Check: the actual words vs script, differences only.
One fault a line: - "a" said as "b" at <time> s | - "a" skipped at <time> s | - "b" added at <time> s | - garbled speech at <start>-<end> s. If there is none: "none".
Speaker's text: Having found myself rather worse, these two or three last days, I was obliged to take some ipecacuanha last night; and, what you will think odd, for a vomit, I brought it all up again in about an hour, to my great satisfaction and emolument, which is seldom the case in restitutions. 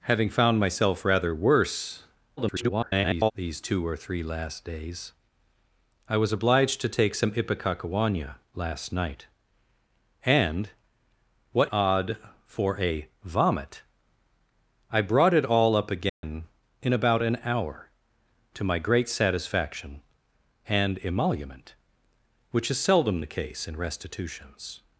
- garbled speech at 2.4-3.3 s
- "you will think" skipped at 11.7 s